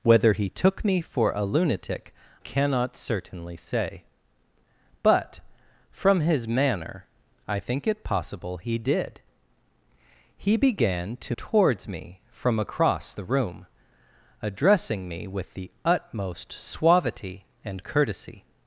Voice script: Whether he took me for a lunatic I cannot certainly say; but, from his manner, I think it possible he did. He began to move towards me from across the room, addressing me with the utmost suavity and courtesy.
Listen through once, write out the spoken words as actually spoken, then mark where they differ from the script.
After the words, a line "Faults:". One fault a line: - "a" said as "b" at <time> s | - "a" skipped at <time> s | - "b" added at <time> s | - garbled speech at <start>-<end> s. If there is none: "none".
Whether he took me for a lunatic cannot certainly say; but, from his manner, I think it possible he did. He began to towards me from across the room, addressing me with the utmost suavity and courtesy.
Faults:
- "I" skipped at 2.1 s
- "move" skipped at 11.4 s